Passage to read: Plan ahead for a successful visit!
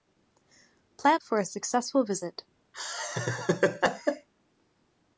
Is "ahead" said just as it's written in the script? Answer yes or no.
no